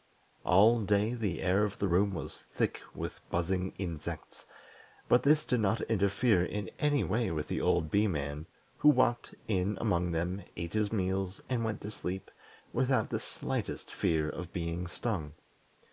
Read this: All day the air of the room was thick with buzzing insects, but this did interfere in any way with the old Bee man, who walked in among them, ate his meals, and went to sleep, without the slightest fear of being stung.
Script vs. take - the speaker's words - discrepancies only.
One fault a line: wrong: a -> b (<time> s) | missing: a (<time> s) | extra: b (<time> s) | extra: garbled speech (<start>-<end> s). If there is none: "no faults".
extra: not (5.6 s)